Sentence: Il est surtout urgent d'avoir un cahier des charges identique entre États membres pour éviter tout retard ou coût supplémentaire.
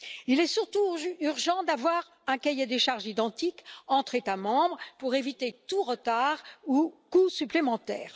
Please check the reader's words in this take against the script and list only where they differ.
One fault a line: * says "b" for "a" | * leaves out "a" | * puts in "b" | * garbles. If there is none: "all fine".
all fine